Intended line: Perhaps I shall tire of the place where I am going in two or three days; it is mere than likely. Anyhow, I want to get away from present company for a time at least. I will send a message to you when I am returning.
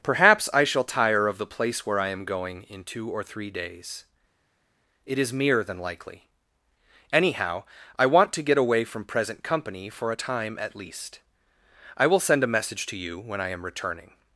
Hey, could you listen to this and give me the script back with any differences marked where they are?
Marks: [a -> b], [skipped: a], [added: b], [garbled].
Perhaps I shall tire of the place where I am going in two or three days; it is mere than likely. Anyhow, I want to get away from present company for a time at least. I will send a message to you when I am returning.